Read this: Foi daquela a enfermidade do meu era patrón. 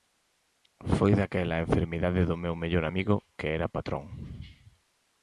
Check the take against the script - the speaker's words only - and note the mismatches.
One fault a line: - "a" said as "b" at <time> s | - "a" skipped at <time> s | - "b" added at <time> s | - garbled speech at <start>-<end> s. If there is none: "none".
- "mellor amigo que" added at 2.6 s